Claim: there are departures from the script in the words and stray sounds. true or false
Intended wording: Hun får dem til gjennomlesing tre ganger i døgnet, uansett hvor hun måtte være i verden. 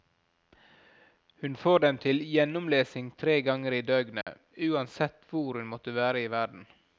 true